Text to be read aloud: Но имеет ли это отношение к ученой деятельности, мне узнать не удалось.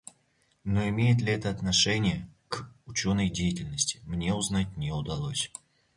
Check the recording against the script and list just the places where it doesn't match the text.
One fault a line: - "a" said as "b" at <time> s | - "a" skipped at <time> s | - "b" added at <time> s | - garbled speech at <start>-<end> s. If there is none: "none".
none